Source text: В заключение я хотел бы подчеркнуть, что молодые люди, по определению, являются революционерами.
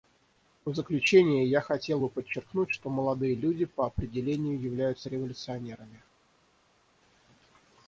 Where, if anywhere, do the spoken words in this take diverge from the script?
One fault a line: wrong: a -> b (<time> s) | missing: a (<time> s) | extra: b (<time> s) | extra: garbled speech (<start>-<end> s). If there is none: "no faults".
no faults